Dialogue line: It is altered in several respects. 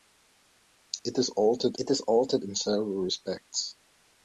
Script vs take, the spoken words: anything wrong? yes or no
yes